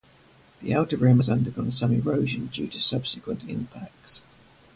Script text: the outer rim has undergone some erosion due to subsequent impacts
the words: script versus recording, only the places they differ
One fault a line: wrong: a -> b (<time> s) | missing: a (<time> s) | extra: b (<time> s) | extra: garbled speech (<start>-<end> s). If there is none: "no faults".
no faults